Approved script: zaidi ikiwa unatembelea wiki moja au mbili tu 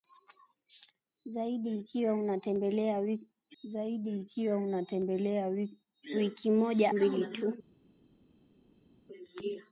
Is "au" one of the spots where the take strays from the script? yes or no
yes